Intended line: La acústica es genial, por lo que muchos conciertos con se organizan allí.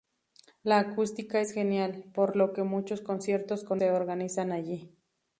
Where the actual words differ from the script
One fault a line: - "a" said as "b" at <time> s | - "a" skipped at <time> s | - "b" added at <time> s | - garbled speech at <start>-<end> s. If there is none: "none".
none